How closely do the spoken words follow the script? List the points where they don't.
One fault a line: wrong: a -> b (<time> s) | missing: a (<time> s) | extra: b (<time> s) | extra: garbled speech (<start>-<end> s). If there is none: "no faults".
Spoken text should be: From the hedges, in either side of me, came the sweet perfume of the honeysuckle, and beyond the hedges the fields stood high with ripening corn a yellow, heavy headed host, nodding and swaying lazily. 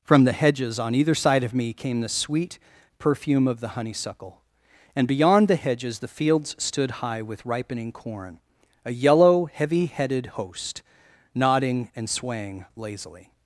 wrong: in -> on (0.8 s)